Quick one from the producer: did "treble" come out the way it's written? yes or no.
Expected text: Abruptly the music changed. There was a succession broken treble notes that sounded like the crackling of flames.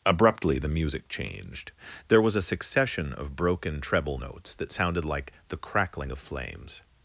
yes